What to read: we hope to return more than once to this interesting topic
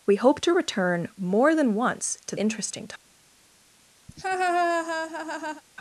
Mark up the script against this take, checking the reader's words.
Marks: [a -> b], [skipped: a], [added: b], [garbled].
we hope to return more than once to [skipped: this] interesting topic